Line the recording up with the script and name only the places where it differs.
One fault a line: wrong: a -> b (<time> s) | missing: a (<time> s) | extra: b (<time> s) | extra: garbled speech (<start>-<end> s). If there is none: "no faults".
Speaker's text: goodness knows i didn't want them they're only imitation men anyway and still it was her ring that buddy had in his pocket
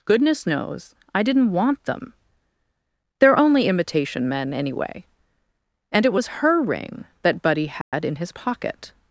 missing: still (6.1 s)